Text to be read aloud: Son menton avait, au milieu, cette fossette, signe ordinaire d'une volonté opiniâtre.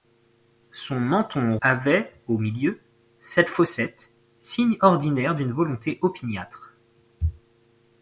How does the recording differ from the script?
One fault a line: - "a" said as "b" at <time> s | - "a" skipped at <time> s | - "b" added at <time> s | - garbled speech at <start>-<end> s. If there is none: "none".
none